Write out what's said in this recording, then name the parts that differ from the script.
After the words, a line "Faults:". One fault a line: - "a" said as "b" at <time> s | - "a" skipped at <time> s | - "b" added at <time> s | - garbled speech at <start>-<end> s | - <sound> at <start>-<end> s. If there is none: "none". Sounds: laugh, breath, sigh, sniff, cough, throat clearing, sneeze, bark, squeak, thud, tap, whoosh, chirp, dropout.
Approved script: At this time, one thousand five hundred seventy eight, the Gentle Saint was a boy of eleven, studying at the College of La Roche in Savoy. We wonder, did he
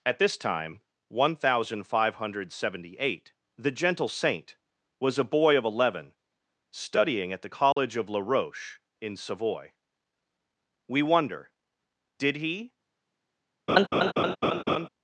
At this time, one thousand five hundred seventy eight, the Gentle Saint was a boy of eleven, studying at the College of La Roche in Savoy. We wonder, did he
Faults:
- dropout at 7.7-7.8 s
- laugh at 13.7-14.9 s